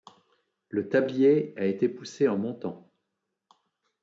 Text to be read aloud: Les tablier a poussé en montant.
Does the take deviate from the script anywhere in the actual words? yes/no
yes